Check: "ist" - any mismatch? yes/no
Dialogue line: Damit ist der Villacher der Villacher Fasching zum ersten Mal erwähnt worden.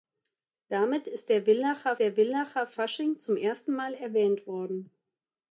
no